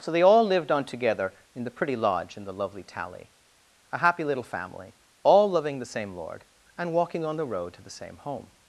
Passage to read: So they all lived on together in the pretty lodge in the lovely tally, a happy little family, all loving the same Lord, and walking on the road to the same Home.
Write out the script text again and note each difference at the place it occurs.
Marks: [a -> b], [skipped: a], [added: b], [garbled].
So they all lived on together in the pretty lodge in the lovely tally, a happy little family, all loving the same Lord, and walking on the road to the same Home.